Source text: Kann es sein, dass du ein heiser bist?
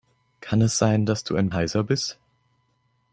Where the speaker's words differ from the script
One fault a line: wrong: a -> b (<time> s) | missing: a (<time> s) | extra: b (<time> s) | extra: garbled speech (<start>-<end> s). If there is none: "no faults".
no faults